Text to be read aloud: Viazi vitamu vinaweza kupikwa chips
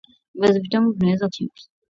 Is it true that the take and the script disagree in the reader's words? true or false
true